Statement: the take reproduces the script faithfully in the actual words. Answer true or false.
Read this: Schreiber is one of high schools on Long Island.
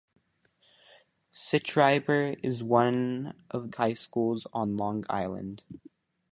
true